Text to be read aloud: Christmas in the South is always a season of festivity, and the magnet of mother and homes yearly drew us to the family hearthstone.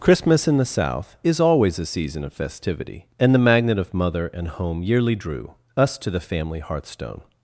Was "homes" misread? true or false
true